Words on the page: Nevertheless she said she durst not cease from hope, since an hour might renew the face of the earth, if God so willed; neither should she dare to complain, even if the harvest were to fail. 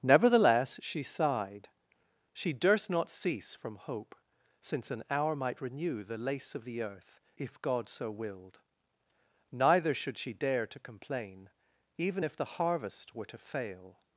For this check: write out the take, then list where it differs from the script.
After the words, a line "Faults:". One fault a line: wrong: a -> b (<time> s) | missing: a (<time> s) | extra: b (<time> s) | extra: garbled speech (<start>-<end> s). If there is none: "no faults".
Nevertheless she sighed she durst not cease from hope, since an hour might renew the lace of the earth, if God so willed; neither should she dare to complain, even if the harvest were to fail.
Faults:
wrong: said -> sighed (1.0 s)
wrong: face -> lace (6.2 s)